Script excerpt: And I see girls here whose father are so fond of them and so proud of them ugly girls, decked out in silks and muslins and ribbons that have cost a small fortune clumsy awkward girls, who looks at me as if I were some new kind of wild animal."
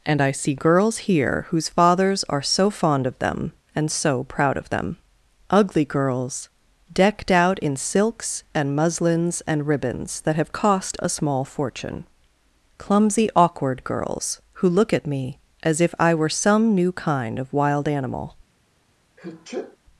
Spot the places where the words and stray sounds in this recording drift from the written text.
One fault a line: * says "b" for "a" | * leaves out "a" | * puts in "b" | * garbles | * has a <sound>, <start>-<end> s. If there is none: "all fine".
* says "fathers" for "father"
* says "look" for "looks"
* has a sneeze, 19.2-19.8 s